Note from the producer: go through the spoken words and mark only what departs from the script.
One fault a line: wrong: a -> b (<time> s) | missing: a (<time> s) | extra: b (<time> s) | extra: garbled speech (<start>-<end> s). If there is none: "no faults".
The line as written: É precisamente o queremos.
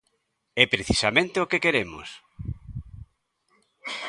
extra: que (1.5 s)